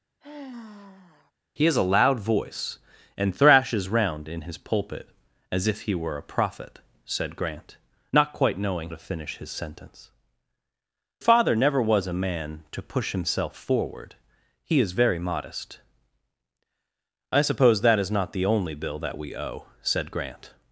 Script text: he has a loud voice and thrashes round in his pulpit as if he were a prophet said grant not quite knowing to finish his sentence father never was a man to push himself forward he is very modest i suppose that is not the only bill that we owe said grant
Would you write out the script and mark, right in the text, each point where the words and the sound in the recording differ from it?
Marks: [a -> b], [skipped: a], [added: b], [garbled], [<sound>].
[sigh] he has a loud voice and thrashes round in his pulpit as if he were a prophet said grant not quite knowing to finish his sentence father never was a man to push himself forward he is very modest i suppose that is not the only bill that we owe said grant